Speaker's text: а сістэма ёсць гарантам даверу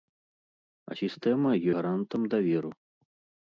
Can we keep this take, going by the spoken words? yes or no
no